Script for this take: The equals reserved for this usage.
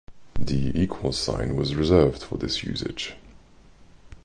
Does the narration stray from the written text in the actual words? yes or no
yes